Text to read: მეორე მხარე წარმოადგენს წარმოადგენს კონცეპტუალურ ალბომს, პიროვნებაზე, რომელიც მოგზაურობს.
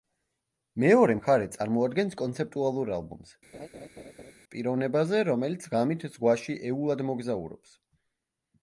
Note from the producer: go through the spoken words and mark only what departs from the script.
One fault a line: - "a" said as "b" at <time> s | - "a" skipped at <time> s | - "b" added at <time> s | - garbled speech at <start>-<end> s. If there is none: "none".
- "წარმოადგენს" skipped at 2.1 s
- "ღამით ზღვაში ეულად" added at 5.8 s